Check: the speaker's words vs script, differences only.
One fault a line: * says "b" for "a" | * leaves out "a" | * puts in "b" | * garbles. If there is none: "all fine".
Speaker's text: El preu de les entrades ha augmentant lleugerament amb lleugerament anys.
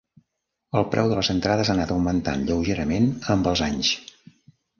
* puts in "anat"
* says "els" for "lleugerament"